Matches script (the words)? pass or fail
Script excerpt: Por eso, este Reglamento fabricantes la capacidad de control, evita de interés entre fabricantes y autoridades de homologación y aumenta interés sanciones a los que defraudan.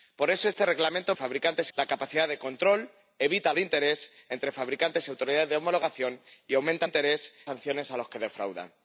pass